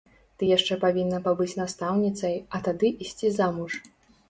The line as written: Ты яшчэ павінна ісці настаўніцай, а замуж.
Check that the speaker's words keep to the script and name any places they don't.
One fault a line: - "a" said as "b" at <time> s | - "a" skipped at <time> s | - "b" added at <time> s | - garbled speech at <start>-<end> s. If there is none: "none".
- "ісці" said as "пабыць" at 1.3 s
- "тады ісці" added at 2.7 s